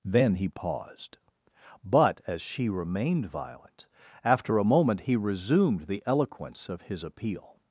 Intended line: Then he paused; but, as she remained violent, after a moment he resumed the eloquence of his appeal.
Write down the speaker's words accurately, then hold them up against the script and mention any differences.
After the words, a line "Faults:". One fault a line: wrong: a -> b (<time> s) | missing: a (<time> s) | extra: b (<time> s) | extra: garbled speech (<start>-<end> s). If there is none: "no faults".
Then he paused; but, as she remained violent, after a moment he resumed the eloquence of his appeal.
Faults:
no faults